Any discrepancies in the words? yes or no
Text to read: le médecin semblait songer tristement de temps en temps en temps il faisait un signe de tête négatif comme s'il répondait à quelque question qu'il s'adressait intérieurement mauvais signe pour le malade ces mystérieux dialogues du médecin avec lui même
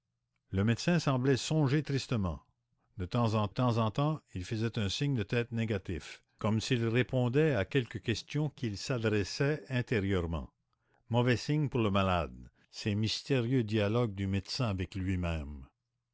no